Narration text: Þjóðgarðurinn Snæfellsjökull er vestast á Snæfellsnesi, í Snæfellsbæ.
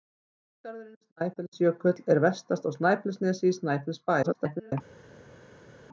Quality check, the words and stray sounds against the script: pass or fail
fail